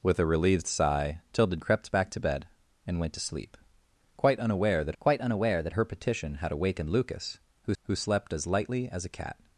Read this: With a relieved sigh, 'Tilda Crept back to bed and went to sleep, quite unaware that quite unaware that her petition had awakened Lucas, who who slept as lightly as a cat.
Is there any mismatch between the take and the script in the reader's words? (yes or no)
no